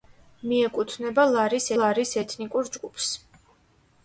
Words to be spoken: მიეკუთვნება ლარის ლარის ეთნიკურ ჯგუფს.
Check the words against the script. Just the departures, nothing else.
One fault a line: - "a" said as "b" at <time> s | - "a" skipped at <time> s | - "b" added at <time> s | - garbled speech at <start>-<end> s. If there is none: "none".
none